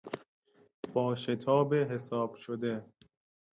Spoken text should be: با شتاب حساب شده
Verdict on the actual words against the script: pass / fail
pass